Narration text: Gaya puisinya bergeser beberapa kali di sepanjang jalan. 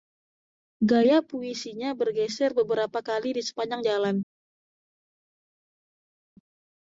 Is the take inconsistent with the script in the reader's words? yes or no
no